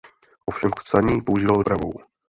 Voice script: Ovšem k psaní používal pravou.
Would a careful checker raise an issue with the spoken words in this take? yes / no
no